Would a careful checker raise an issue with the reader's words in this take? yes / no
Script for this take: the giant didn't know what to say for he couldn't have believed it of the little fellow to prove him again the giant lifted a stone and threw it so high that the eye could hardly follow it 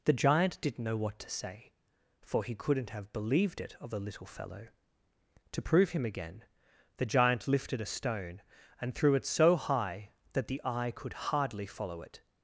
no